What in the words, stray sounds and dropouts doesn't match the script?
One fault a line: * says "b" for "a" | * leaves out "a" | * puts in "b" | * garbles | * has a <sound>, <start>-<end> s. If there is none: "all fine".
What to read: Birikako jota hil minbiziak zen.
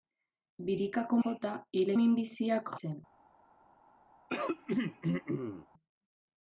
* has a throat clearing, 4.3-5.7 s